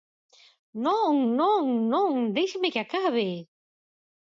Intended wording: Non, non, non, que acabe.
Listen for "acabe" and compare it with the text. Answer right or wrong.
right